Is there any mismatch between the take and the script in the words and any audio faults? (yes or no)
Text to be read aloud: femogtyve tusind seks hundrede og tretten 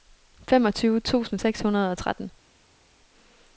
no